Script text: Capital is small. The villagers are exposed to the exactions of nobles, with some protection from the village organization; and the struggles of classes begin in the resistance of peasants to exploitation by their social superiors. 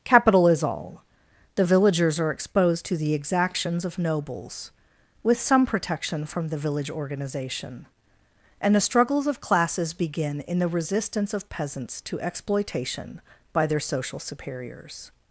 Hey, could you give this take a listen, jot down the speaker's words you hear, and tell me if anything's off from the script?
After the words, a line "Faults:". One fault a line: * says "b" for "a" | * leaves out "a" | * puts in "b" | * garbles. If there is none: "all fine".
Capital is all. The villagers are exposed to the exactions of nobles, with some protection from the village organization; and the struggles of classes begin in the resistance of peasants to exploitation by their social superiors.
Faults:
* says "all" for "small"